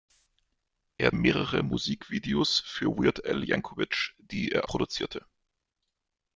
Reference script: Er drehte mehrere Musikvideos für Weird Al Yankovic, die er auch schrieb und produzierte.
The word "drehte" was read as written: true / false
false